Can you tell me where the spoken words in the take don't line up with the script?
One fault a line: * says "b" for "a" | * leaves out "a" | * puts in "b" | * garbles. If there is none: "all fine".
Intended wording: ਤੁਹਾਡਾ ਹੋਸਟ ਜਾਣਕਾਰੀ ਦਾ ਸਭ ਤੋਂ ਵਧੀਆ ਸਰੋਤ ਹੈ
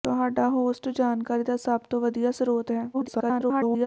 * garbles